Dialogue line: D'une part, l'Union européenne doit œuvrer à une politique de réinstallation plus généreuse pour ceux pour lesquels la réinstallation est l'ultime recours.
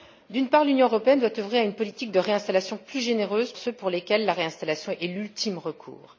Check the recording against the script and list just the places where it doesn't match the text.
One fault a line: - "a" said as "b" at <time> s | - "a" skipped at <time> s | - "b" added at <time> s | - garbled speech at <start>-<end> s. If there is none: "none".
- "pour" skipped at 3.5 s